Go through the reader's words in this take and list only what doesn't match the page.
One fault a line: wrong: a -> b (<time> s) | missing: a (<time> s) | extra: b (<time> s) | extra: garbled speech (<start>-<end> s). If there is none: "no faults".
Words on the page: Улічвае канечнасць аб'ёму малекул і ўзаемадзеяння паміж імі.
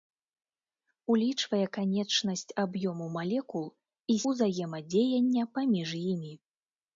no faults